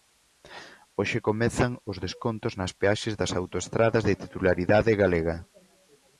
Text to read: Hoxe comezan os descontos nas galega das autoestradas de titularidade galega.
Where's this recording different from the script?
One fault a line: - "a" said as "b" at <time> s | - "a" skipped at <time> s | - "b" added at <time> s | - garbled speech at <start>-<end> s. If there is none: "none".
- "galega" said as "peaxes" at 2.8 s